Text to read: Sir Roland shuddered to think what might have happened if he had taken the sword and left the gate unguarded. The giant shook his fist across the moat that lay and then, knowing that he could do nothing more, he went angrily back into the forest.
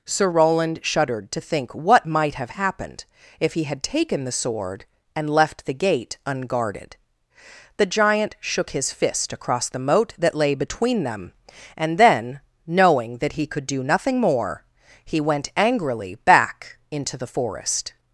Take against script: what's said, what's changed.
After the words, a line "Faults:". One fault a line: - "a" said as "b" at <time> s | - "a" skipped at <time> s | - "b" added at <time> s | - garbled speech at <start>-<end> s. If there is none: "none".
Sir Roland shuddered to think what might have happened if he had taken the sword and left the gate unguarded. The giant shook his fist across the moat that lay between them, and then, knowing that he could do nothing more, he went angrily back into the forest.
Faults:
- "between them" added at 10.5 s